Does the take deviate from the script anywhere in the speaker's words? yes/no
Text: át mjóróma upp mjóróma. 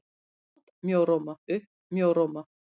no